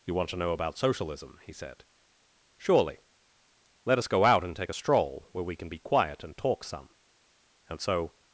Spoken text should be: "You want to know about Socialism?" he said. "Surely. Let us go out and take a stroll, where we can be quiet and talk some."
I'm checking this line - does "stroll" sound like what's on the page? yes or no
yes